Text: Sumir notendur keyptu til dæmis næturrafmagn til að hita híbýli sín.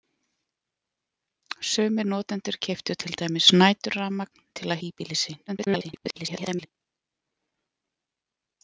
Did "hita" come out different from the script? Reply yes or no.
yes